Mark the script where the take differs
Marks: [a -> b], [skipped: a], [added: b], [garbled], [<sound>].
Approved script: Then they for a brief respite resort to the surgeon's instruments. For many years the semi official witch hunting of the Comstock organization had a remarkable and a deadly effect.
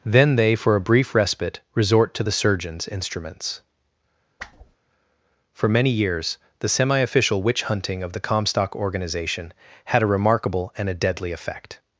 Then they for a brief respite resort to the surgeon's instruments. [whoosh] For many years the semi official witch hunting of the Comstock organization had a remarkable and a deadly effect.